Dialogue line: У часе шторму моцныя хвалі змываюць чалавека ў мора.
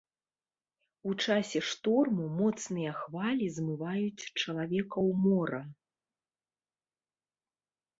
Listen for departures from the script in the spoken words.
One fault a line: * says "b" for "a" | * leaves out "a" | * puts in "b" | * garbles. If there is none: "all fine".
all fine